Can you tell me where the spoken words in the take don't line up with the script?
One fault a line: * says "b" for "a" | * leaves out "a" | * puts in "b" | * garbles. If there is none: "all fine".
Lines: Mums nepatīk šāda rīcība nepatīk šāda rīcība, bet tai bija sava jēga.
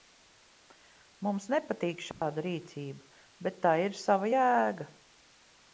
* leaves out "nepatīk šāda rīcība"
* says "ir" for "bija"